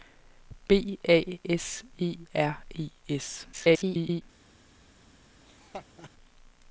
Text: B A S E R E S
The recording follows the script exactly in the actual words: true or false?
false